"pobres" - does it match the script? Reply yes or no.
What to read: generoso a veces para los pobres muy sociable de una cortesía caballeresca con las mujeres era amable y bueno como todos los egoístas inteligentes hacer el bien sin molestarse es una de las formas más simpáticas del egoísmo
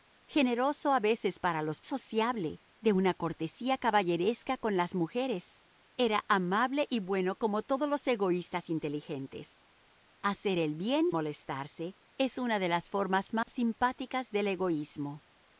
no